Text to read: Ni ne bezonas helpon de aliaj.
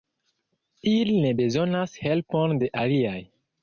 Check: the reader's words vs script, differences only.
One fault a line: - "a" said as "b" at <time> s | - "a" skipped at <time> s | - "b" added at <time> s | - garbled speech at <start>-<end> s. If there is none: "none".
- "Ni" said as "Ili" at 0.9 s